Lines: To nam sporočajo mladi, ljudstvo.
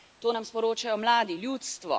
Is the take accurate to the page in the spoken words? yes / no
yes